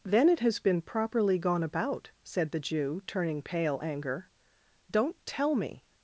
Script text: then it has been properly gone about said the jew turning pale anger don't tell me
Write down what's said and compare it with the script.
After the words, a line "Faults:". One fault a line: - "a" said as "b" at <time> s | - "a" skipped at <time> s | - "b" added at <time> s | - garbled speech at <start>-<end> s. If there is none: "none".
then it has been properly gone about said the jew turning pale anger don't tell me
Faults:
none